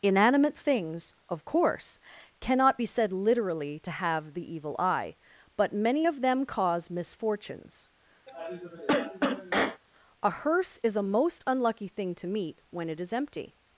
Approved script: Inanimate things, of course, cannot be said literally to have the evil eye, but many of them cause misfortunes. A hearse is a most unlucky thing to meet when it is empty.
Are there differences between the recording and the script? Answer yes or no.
no